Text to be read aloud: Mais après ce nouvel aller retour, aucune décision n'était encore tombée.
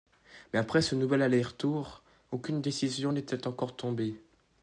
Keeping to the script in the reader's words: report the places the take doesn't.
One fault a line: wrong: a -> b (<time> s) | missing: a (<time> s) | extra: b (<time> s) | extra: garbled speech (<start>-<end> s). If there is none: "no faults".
no faults